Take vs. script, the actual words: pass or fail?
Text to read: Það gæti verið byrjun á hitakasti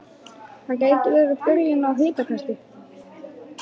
pass